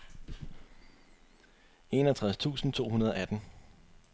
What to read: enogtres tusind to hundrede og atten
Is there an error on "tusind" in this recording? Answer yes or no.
no